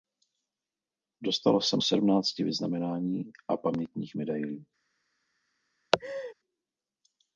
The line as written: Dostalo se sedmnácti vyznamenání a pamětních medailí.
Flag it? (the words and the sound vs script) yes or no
yes